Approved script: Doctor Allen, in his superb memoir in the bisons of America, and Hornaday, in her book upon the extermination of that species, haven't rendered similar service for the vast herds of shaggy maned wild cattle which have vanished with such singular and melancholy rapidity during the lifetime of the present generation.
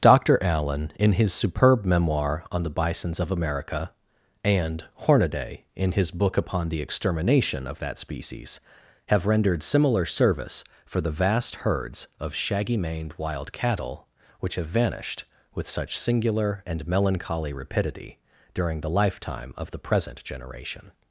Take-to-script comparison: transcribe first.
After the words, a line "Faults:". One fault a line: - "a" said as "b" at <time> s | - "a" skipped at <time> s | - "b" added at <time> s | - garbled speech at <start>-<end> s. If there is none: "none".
Doctor Allen, in his superb memoir on the bisons of America, and Hornaday, in his book upon the extermination of that species, have rendered similar service for the vast herds of shaggy maned wild cattle which have vanished with such singular and melancholy rapidity during the lifetime of the present generation.
Faults:
- "in" said as "on" at 2.5 s
- "her" said as "his" at 5.9 s
- "haven't" said as "have" at 9.1 s